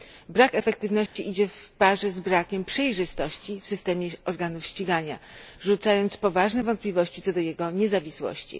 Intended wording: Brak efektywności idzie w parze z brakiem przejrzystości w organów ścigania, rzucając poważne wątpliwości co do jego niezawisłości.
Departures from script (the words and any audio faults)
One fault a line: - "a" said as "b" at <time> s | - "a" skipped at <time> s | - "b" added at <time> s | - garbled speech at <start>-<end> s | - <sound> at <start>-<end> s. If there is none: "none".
- dropout at 1.1-1.2 s
- "systemie" added at 3.7 s